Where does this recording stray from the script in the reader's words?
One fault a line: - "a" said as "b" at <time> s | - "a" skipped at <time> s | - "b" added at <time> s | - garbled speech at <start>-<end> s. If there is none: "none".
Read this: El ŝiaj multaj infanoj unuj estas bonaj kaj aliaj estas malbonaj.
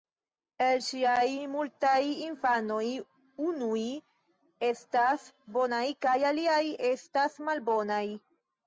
none